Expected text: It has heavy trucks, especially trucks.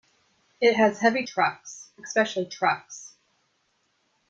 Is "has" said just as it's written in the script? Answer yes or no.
yes